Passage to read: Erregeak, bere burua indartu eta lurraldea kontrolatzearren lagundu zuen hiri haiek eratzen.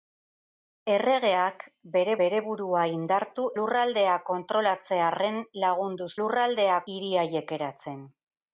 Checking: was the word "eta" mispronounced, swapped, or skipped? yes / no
yes